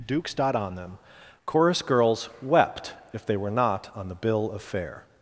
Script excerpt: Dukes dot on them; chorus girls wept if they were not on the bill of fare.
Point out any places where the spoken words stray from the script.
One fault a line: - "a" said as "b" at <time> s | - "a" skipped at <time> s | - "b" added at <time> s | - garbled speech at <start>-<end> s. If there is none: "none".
none